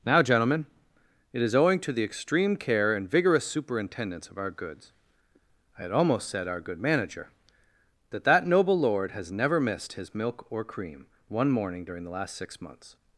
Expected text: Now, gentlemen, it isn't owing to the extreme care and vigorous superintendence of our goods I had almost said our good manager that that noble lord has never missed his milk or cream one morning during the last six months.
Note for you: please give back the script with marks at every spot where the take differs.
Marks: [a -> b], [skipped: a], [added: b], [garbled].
Now, gentlemen, it [isn't -> is] owing to the extreme care and vigorous superintendence of our goods I had almost said our good manager that that noble lord has never missed his milk or cream one morning during the last six months.